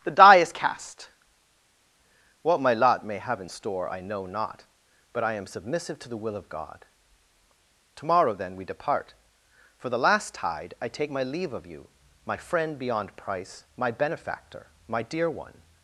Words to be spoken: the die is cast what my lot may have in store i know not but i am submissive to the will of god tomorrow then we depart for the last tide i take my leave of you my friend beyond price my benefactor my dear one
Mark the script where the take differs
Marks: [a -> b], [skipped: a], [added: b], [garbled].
the die is cast what my lot may have in store i know not but i am submissive to the will of god tomorrow then we depart for the last tide i take my leave of you my friend beyond price my benefactor my dear one